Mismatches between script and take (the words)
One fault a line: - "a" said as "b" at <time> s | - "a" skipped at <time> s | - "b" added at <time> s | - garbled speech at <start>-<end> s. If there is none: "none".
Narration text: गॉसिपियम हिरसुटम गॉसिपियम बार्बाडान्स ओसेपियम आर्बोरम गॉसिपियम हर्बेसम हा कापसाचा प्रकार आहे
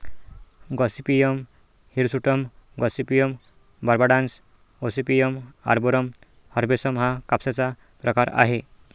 - "गॉसिपियम" skipped at 6.1 s